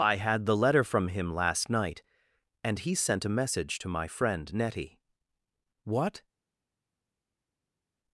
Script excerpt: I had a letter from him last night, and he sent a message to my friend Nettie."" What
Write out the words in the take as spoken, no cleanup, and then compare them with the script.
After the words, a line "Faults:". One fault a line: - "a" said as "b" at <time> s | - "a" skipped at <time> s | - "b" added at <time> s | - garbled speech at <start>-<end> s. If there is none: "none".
I had the letter from him last night, and he sent a message to my friend Nettie."" What
Faults:
- "a" said as "the" at 0.5 s